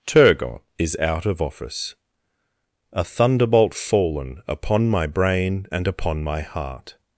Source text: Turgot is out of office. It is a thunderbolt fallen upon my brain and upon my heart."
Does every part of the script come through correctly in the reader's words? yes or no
no